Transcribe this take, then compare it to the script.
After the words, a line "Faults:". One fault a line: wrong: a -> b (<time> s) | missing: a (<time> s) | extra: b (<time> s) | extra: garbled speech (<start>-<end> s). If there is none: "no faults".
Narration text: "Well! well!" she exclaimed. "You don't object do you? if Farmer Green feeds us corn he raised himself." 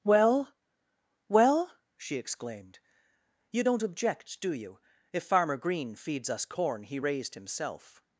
"Well! well!" she exclaimed. "You don't object do you? if Farmer Green feeds us corn he raised himself."
Faults:
no faults